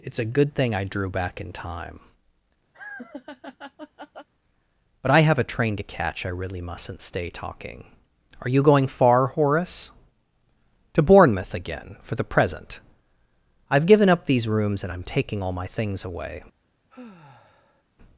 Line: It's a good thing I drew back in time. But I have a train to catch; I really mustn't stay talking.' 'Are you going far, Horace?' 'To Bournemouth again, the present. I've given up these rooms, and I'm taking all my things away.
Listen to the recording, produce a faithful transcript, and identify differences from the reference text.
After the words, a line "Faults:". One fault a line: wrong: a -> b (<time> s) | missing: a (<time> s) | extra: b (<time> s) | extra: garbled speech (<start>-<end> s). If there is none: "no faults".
It's a good thing I drew back in time. But I have a train to catch; I really mustn't stay talking.' 'Are you going far, Horace?' 'To Bournemouth again, for the present. I've given up these rooms, and I'm taking all my things away.
Faults:
extra: for (12.0 s)